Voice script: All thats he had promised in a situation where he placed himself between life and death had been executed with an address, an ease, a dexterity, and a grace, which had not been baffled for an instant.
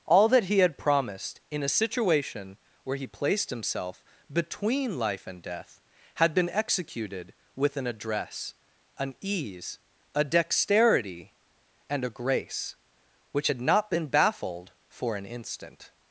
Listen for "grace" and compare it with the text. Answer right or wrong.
right